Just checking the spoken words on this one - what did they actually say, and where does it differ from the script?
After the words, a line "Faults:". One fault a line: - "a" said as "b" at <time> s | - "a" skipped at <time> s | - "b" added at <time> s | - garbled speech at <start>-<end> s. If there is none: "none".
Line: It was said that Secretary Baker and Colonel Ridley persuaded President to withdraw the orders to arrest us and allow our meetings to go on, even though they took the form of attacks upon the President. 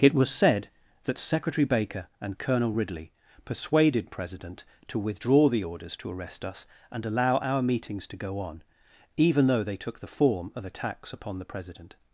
It was said that Secretary Baker and Colonel Ridley persuaded President to withdraw the orders to arrest us and allow our meetings to go on, even though they took the form of attacks upon the President.
Faults:
none